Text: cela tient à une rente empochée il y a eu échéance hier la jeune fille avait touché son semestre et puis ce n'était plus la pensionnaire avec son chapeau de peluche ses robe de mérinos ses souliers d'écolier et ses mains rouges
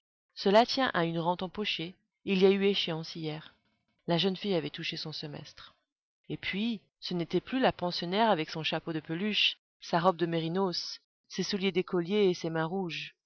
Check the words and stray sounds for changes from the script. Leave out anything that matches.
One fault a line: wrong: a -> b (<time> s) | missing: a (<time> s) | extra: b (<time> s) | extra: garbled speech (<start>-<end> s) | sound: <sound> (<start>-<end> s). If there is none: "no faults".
wrong: ses -> sa (9.8 s)